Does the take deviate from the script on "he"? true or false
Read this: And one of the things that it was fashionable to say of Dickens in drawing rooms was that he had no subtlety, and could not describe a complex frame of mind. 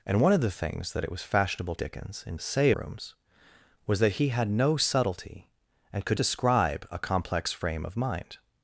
false